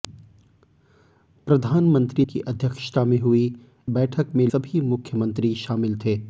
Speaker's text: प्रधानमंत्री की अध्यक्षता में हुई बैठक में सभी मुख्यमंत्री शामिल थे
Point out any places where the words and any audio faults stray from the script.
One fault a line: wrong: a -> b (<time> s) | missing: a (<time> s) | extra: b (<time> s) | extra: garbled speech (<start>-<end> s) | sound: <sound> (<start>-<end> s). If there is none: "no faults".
no faults